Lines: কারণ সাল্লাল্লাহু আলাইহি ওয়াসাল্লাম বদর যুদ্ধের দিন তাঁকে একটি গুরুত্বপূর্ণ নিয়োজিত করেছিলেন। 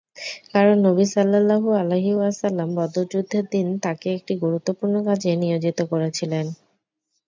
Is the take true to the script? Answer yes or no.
no